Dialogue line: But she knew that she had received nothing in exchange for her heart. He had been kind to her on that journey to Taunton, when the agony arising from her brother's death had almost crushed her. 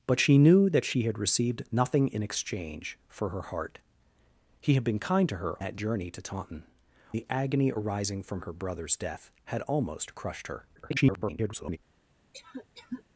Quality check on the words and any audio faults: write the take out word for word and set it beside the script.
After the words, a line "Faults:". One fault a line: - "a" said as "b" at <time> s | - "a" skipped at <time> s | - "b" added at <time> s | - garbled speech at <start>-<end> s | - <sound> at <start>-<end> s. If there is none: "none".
But she knew that she had received nothing in exchange for her heart. He had been kind to her that journey to Taunton, the agony arising from her brother's death had almost crushed her. [garbled]
Faults:
- "on" skipped at 5.6 s
- "when" skipped at 6.6 s
- garbled speech at 10.8-11.8 s
- cough at 12.3-13.0 s